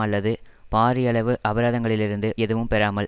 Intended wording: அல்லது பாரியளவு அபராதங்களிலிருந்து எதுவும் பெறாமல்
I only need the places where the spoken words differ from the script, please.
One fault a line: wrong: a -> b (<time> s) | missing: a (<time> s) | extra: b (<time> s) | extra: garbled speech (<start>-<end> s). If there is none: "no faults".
no faults